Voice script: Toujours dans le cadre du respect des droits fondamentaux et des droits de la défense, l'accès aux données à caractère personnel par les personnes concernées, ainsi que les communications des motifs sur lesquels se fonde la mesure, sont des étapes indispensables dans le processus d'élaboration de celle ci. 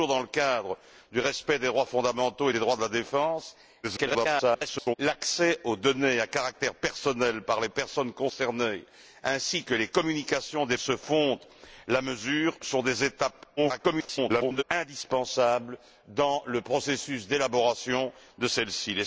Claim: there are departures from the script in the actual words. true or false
true